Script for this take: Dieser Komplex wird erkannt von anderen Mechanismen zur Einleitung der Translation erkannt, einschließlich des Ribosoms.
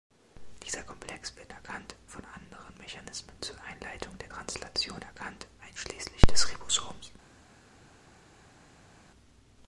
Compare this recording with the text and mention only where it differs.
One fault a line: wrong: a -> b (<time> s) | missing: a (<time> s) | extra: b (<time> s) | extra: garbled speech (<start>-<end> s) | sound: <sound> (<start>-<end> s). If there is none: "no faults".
no faults